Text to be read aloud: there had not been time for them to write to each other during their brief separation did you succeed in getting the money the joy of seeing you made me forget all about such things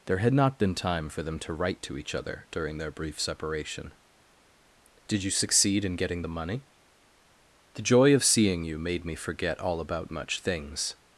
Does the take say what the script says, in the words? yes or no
no